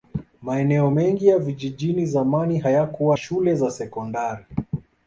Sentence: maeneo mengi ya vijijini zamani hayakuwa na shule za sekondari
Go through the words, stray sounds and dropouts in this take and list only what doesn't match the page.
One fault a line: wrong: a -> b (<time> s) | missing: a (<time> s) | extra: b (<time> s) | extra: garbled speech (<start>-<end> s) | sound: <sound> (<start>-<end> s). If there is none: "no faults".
missing: na (3.2 s)